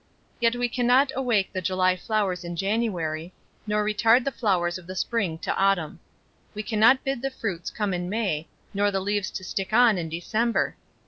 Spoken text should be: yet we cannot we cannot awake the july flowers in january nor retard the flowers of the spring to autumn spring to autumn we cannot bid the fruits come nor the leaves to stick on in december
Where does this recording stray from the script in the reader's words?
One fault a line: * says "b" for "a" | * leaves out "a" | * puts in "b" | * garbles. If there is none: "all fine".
* leaves out "we cannot"
* leaves out "spring to autumn"
* puts in "in may"